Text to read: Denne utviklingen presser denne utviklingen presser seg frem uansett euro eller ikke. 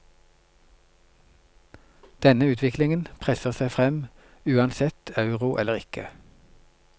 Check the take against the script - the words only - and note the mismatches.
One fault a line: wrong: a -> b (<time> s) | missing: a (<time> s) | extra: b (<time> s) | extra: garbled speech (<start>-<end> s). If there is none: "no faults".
missing: denne utviklingen presser (3.5 s)